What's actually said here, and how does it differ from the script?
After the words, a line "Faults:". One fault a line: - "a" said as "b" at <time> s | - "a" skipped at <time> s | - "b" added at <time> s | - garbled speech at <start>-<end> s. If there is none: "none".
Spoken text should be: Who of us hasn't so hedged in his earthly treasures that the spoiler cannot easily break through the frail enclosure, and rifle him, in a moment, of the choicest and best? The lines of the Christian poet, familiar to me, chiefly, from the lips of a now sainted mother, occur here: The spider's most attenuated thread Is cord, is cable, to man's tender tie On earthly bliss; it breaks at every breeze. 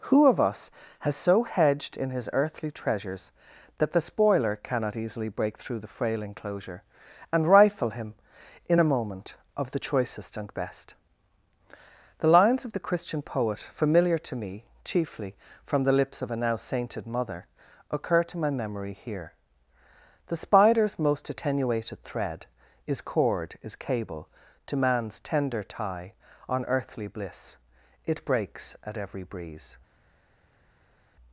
Who of us has so hedged in his earthly treasures that the spoiler cannot easily break through the frail enclosure, and rifle him, in a moment, of the choicest and best? The lines of the Christian poet, familiar to me, chiefly, from the lips of a now sainted mother, occur to my memory here: The spider's most attenuated thread Is cord, is cable, to man's tender tie On earthly bliss; it breaks at every breeze.
Faults:
- "hasn't" said as "has" at 1.0 s
- "to my memory" added at 18.2 s